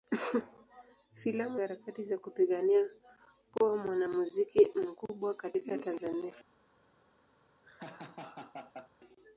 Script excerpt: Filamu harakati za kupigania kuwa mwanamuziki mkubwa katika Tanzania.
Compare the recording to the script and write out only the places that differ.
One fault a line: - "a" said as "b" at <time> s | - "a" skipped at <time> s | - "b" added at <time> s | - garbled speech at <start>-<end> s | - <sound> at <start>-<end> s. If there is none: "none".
- laugh at 7.6-8.9 s